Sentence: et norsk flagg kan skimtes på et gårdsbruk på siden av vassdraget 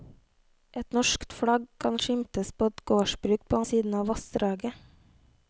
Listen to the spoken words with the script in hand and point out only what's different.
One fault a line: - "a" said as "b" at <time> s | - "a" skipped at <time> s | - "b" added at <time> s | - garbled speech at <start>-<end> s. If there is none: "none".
none